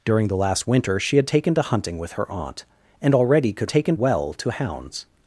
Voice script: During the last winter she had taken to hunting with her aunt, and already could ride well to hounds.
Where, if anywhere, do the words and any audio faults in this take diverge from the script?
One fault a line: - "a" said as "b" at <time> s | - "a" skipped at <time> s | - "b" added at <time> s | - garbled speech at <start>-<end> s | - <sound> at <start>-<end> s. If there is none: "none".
- "ride" said as "taken" at 3.7 s